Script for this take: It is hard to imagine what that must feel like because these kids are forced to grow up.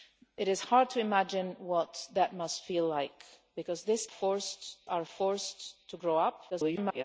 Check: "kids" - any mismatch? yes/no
yes